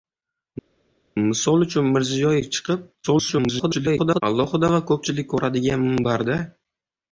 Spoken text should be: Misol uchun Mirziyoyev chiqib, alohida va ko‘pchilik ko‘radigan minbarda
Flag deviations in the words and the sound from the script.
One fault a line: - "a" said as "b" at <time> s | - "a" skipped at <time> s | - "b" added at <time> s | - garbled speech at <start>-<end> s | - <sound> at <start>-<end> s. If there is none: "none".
- garbled speech at 3.0-4.2 s